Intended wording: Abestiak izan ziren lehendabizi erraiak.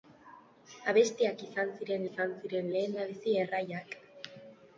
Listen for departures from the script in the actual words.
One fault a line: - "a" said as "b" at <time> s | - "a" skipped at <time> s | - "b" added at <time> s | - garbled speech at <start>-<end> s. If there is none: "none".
- "izan ziren" added at 2.1 s